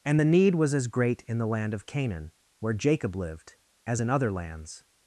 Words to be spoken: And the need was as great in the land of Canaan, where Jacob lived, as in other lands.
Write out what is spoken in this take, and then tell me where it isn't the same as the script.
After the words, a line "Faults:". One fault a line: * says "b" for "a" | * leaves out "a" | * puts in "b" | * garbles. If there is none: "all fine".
And the need was as great in the land of Canaan, where Jacob lived, as in other lands.
Faults:
all fine